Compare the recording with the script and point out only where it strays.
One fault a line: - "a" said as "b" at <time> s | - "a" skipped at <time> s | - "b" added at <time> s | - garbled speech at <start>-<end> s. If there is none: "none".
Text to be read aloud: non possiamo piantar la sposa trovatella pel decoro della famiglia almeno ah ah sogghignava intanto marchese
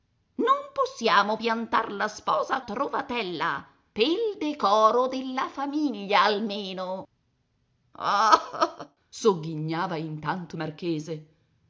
none